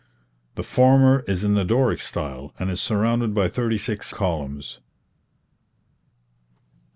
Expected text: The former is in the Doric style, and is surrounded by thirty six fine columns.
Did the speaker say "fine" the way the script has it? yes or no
no